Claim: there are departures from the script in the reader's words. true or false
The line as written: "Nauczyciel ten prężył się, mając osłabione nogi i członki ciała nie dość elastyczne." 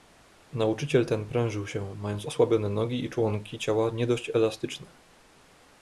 false